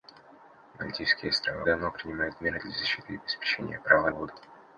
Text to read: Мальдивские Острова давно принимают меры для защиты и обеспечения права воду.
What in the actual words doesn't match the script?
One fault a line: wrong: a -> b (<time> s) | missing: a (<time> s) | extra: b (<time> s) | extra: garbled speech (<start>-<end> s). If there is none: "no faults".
no faults